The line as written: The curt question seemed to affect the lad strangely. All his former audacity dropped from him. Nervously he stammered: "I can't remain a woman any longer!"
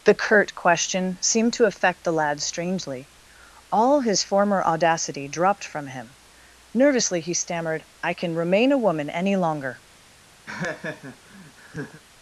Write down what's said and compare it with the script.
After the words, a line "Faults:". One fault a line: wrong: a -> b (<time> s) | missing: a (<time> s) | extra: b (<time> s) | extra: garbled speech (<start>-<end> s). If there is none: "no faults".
The curt question seemed to affect the lad strangely. All his former audacity dropped from him. Nervously he stammered: "I can remain a woman any longer!"
Faults:
wrong: can't -> can (8.2 s)